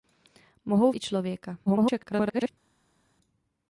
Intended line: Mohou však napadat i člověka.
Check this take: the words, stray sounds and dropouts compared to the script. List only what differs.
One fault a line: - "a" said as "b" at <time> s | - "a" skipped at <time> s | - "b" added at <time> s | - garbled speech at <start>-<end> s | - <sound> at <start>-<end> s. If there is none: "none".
- "však napadat" skipped at 0.9 s
- garbled speech at 1.7-2.5 s